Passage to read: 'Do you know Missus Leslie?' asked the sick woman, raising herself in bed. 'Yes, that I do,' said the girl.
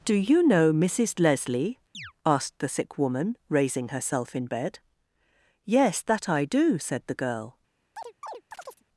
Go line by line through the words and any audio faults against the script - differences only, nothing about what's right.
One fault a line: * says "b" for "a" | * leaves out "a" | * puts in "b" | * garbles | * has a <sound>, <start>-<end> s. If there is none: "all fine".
* has a chirp, 1.9-2.1 s
* has a chirp, 8.0-8.8 s